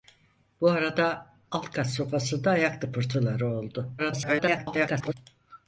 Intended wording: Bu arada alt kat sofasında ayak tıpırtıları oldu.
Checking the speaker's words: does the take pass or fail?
fail